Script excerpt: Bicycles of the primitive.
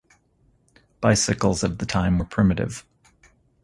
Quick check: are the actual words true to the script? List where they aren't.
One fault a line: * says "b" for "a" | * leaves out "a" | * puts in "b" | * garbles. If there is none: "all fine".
* puts in "time were"